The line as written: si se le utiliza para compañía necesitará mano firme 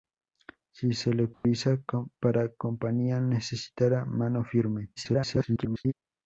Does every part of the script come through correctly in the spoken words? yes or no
no